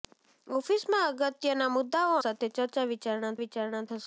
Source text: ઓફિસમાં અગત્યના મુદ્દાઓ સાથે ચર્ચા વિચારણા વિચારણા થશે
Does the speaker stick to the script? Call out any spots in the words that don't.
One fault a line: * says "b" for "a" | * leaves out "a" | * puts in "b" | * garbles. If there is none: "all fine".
all fine